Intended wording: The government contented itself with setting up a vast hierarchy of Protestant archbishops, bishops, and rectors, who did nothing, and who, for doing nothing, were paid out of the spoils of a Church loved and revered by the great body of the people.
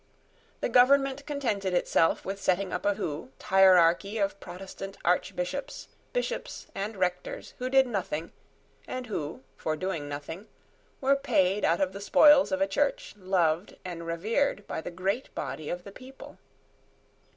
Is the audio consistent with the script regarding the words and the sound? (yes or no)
no